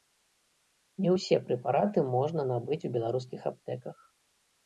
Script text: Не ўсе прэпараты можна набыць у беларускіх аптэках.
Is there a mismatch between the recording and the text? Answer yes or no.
no